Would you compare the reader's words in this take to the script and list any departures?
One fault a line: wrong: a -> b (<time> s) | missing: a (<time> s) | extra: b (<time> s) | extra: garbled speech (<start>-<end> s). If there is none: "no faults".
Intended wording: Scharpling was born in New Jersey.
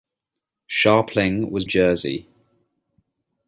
missing: born in New (1.6 s)